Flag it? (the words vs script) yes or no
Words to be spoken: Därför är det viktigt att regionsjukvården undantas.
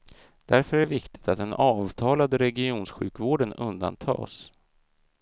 yes